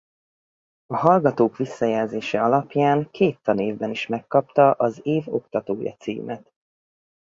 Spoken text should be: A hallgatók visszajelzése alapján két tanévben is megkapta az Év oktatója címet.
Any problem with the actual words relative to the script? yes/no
no